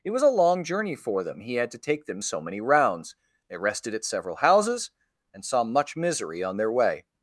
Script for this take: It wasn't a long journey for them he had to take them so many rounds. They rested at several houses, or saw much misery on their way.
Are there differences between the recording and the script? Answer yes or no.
yes